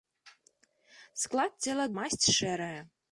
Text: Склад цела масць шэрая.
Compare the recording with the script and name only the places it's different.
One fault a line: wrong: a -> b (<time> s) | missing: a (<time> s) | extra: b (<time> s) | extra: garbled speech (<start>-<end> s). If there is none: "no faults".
no faults